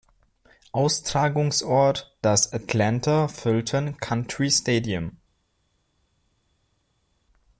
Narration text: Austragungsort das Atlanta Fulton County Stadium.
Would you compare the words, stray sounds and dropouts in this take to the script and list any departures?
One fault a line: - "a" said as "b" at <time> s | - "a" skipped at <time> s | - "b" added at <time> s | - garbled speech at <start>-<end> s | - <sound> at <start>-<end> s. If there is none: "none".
none